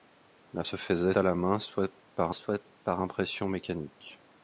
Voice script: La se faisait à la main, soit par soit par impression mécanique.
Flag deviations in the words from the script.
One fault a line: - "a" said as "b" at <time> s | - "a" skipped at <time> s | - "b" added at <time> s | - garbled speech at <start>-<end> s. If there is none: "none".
none